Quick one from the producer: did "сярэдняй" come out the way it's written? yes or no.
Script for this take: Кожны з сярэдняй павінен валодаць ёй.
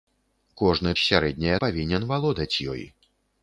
yes